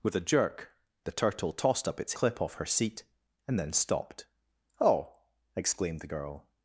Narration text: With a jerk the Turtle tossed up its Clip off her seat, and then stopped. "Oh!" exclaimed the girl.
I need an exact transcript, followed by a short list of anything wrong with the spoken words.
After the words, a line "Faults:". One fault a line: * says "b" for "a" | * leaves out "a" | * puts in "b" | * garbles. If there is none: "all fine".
With a jerk the Turtle tossed up its Clip off her seat, and then stopped. "Oh!" exclaimed the girl.
Faults:
all fine